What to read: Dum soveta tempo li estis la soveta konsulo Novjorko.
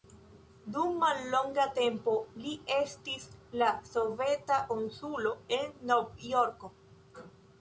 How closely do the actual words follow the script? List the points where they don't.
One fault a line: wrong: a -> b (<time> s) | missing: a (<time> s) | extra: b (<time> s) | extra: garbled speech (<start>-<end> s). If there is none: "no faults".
wrong: soveta -> mallonga (1.0 s)
extra: en (5.6 s)